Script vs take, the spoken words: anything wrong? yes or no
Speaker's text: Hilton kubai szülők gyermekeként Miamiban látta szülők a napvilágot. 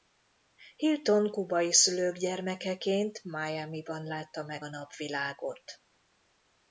yes